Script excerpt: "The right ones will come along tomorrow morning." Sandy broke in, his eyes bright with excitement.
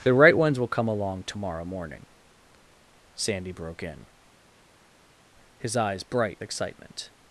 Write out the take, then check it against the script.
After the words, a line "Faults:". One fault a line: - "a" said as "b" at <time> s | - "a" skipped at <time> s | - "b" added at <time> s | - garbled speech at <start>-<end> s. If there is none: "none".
"The right ones will come along tomorrow morning." Sandy broke in, his eyes bright excitement.
Faults:
- "with" skipped at 6.4 s